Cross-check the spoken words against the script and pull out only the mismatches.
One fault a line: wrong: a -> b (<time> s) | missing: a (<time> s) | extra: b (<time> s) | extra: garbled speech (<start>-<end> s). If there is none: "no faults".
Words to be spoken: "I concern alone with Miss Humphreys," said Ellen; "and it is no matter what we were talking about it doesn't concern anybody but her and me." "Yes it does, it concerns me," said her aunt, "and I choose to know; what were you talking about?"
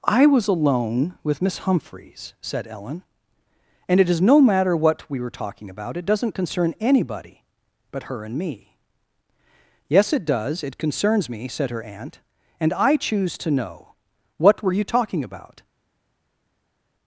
wrong: concern -> was (0.2 s)